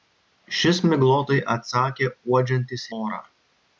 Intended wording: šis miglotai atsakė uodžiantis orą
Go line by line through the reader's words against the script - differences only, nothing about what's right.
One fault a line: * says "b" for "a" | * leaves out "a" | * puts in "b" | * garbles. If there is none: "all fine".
all fine